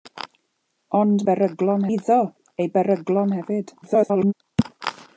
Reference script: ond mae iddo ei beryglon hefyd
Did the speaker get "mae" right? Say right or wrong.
wrong